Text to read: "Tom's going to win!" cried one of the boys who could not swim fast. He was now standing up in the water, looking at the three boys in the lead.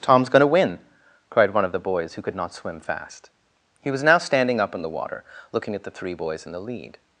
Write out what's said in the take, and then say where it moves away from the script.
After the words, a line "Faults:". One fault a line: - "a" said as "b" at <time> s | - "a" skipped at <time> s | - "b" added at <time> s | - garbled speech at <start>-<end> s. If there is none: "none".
"Tom's going to win!" cried one of the boys who could not swim fast. He was now standing up in the water, looking at the three boys in the lead.
Faults:
none